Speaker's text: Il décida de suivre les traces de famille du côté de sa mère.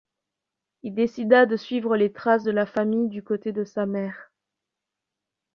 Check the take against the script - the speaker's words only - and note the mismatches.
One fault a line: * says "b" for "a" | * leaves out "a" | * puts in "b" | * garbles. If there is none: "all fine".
* puts in "la"